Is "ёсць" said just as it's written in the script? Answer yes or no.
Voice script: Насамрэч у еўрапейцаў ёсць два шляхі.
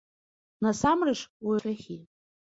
no